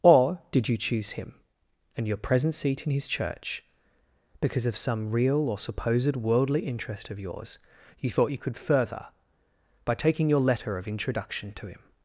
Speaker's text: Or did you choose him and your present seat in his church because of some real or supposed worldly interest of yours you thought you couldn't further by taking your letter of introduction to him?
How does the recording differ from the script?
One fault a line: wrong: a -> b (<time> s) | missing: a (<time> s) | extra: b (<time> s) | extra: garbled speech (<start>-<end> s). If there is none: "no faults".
wrong: couldn't -> could (8.4 s)